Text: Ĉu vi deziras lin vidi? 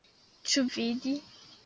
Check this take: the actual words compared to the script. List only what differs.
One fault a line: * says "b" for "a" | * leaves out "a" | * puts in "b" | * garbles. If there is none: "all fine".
* leaves out "vi deziras lin"